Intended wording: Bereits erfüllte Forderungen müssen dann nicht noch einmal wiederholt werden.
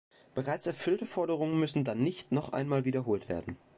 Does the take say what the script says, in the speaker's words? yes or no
yes